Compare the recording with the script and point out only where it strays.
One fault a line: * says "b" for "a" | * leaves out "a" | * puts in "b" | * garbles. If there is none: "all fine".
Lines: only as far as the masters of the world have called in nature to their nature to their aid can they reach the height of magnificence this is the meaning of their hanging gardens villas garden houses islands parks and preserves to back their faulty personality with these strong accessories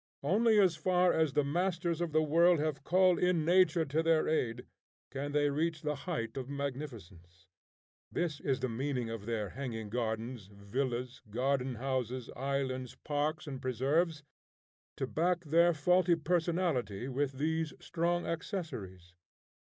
* leaves out "nature to their"